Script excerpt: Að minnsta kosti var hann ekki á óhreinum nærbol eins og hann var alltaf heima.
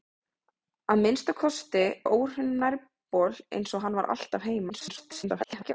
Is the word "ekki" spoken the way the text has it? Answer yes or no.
no